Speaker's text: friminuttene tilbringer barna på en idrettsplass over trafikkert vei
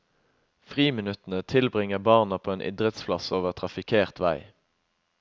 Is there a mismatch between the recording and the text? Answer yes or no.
no